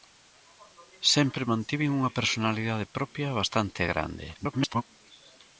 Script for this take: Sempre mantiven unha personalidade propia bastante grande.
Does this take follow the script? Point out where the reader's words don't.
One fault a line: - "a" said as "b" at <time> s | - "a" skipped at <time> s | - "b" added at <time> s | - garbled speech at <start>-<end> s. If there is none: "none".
- garbled speech at 4.3-4.8 s